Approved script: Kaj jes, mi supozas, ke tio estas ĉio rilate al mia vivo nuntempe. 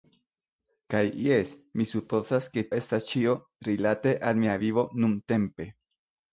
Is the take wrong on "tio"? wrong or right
wrong